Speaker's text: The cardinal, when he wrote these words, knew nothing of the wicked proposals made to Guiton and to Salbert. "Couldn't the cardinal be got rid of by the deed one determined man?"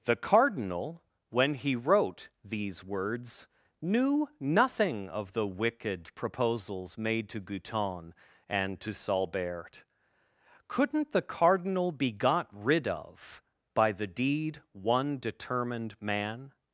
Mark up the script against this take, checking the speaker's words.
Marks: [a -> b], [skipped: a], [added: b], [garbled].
The cardinal, when he wrote these words, knew nothing of the wicked proposals made to Guiton and to Salbert. "Couldn't the cardinal be got rid of by the deed one determined man?"